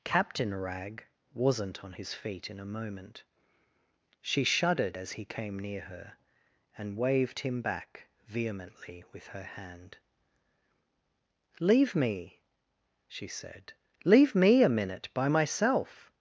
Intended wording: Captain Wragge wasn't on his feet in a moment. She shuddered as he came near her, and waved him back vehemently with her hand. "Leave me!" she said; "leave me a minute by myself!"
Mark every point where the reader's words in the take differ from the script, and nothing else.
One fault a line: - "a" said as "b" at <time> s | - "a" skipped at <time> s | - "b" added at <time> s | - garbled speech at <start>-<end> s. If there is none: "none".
none